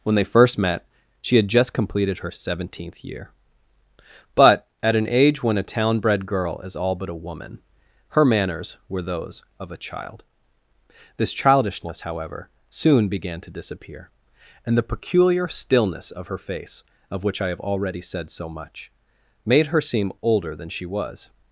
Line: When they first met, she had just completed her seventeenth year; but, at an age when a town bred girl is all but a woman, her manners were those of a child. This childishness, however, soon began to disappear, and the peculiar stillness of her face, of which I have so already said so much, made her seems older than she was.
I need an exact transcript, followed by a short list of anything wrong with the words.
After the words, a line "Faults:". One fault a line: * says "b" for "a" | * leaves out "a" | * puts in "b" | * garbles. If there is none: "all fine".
When they first met, she had just completed her seventeenth year; but, at an age when a town bred girl is all but a woman, her manners were those of a child. This childishness, however, soon began to disappear, and the peculiar stillness of her face, of which I have already said so much, made her seem older than she was.
Faults:
* leaves out "so"
* says "seem" for "seems"